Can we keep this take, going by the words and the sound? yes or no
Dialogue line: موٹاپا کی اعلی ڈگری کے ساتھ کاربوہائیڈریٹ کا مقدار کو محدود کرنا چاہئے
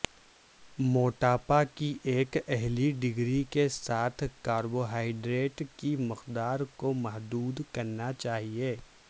no